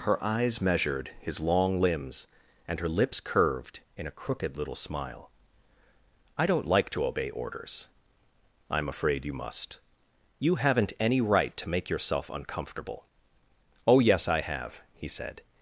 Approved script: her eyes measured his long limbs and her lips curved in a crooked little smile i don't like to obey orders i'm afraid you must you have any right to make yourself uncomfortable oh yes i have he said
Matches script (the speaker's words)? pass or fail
fail